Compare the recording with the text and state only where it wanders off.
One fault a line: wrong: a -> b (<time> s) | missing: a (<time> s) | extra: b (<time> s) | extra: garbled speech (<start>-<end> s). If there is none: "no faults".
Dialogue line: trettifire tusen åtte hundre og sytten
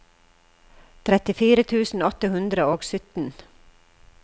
no faults